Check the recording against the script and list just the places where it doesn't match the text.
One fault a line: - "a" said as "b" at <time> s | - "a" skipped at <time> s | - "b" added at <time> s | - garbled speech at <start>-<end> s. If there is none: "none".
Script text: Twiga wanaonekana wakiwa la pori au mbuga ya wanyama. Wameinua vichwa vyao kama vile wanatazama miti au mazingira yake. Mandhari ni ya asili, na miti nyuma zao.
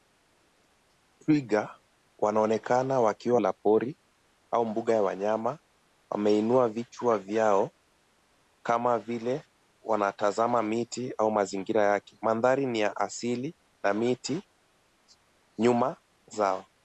none